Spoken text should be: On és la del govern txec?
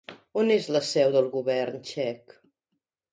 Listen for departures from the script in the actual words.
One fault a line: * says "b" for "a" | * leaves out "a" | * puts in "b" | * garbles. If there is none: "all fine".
* puts in "seu"